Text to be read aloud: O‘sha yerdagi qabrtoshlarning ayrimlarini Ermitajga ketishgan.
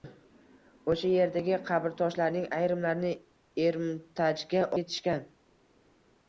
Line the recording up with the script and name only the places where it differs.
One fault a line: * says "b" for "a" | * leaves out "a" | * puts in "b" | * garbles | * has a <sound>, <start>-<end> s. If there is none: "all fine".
all fine